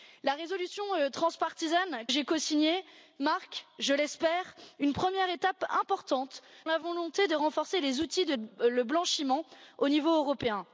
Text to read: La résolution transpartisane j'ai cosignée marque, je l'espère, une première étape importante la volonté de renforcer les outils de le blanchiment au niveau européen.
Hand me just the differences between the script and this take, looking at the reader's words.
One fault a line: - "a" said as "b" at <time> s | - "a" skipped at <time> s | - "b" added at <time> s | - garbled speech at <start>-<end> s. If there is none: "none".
none